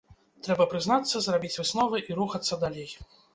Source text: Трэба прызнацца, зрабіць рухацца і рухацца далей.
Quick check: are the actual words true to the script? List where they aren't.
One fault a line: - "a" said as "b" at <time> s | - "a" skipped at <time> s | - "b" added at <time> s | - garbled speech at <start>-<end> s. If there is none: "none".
- "рухацца" said as "высновы" at 1.6 s